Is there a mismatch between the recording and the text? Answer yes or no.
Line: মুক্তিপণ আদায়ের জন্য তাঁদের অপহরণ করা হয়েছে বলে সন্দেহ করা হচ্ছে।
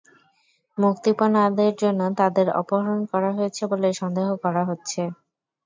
no